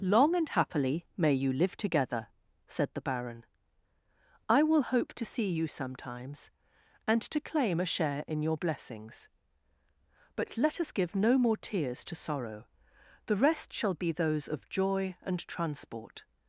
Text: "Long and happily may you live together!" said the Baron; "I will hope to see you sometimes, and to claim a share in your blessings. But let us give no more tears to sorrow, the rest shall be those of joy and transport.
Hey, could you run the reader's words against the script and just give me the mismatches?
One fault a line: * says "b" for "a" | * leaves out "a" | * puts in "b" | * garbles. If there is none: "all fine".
all fine